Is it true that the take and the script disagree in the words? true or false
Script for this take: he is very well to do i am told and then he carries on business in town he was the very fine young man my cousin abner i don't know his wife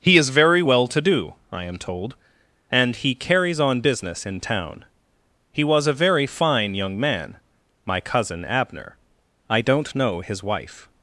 true